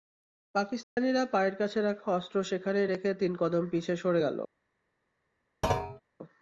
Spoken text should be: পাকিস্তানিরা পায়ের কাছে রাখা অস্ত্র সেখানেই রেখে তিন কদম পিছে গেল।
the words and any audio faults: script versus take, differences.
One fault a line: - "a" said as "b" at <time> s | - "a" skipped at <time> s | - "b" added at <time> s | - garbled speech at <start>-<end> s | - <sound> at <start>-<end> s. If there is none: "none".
- dropout at 0.8-1.0 s
- "সরে" added at 4.0 s
- thud at 5.6-6.0 s